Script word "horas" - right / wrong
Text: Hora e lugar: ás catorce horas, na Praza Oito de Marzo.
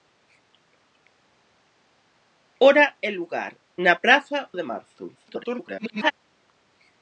wrong